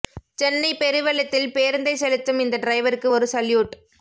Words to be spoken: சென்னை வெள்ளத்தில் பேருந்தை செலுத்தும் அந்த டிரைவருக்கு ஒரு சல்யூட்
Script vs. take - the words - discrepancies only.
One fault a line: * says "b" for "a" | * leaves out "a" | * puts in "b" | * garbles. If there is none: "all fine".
* puts in "பெரு"
* says "இந்த" for "அந்த"